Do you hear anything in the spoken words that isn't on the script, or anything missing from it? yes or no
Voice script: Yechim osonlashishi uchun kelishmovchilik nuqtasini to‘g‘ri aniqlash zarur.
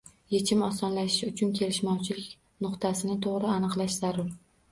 no